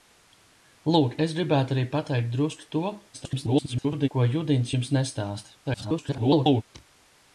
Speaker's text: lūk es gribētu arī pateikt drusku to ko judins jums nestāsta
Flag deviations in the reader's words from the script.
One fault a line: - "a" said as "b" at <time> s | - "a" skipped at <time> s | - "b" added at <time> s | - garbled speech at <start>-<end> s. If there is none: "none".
- garbled speech at 3.1-4.1 s
- garbled speech at 5.6-6.6 s